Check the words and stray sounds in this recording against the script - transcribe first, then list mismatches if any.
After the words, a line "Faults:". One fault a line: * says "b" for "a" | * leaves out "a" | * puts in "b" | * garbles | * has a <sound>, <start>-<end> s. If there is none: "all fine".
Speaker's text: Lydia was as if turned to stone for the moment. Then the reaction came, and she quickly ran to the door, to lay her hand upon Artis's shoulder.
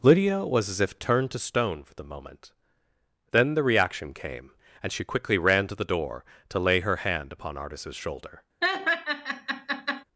Lydia was as if turned to stone for the moment. Then the reaction came, and she quickly ran to the door, to lay her hand upon Artis's shoulder.
Faults:
* has a laugh, 8.6-10.0 s